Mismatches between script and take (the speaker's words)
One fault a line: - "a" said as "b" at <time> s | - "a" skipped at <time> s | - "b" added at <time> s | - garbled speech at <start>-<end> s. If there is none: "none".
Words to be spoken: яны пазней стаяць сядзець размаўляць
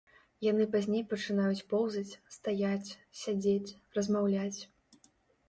- "пачынаюць поўзаць" added at 1.1 s